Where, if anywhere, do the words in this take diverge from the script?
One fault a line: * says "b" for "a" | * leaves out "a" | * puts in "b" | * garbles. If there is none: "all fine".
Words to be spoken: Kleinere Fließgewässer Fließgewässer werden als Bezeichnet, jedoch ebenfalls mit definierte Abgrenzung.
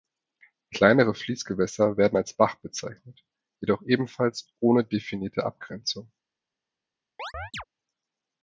* leaves out "Fließgewässer"
* puts in "Bach"
* says "ohne" for "mit"